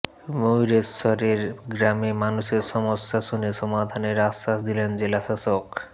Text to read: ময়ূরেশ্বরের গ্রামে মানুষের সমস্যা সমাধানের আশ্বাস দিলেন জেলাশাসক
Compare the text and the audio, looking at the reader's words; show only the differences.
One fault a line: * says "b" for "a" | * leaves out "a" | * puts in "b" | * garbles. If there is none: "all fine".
* puts in "শুনে"